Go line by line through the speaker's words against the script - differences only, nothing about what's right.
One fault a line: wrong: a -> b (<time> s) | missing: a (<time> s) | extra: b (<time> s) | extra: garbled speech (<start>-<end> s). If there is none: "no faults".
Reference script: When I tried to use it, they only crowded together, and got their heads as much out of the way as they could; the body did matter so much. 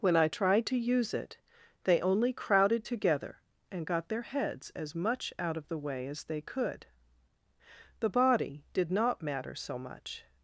extra: not (8.9 s)